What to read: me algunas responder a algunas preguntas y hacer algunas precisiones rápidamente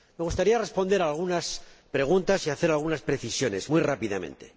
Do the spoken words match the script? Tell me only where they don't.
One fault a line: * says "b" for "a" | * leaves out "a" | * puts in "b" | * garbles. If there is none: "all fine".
* says "gustaría" for "algunas"
* puts in "muy"